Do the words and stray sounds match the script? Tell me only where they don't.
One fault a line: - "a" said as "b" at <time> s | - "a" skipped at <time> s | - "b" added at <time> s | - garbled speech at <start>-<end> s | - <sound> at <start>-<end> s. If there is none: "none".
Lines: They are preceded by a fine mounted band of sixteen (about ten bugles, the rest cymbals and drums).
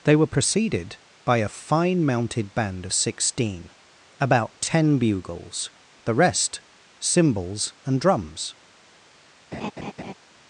- "are" said as "were" at 0.1 s
- laugh at 9.5-10.1 s